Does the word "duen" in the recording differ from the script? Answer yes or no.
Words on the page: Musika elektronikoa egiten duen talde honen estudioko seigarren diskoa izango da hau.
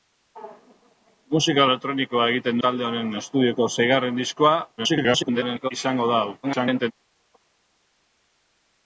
yes